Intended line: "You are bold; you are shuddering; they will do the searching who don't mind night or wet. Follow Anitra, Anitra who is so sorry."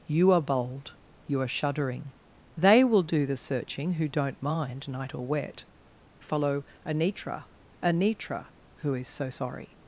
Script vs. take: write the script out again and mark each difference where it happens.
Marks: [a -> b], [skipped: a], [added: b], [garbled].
"You are bold; you are shuddering; they will do the searching who don't mind night or wet. Follow Anitra, Anitra who is so sorry."